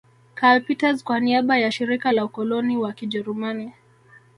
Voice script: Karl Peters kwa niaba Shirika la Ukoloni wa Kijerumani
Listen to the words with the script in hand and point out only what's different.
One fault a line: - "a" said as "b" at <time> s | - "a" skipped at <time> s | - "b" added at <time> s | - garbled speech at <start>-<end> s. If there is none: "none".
- "ya" added at 1.6 s